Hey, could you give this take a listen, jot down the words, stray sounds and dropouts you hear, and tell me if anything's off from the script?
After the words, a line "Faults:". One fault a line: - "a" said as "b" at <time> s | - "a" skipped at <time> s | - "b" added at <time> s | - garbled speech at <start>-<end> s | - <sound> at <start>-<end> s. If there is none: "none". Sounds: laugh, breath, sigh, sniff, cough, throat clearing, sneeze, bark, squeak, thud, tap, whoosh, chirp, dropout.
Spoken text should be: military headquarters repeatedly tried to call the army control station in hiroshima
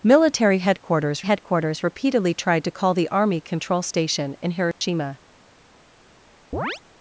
military headquarters headquarters repeatedly tried to call the army control station in hiroshima
Faults:
- "headquarters" added at 1.2 s
- dropout at 4.7-4.8 s
- chirp at 6.5-6.8 s